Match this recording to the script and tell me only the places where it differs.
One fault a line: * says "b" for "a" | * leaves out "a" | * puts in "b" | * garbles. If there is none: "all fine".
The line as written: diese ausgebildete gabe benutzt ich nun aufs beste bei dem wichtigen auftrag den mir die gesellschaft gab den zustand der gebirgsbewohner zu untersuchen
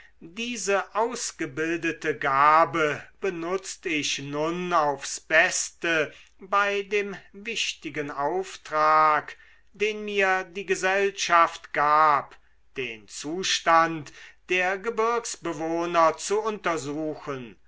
all fine